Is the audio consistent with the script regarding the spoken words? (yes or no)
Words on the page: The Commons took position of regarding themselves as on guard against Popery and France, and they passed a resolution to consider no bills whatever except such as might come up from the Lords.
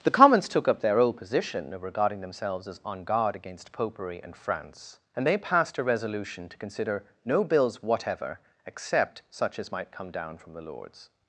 no